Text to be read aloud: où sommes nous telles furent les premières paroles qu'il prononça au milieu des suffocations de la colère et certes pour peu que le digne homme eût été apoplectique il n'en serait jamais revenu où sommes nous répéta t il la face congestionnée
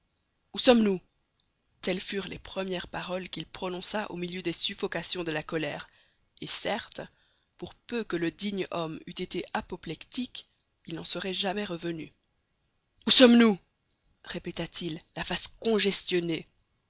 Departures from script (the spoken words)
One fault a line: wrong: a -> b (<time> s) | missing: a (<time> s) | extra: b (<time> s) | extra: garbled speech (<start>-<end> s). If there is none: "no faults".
no faults